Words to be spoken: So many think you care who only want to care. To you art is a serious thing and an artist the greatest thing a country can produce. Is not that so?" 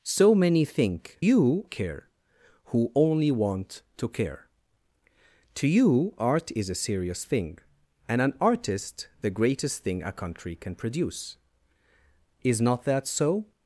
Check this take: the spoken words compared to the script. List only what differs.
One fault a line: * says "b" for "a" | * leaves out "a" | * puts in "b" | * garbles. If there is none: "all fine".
all fine